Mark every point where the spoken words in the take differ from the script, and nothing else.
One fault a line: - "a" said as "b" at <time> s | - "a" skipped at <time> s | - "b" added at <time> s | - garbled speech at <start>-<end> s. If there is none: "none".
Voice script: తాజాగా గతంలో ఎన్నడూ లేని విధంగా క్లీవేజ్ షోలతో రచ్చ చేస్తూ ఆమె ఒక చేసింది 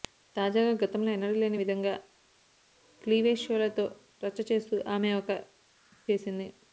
none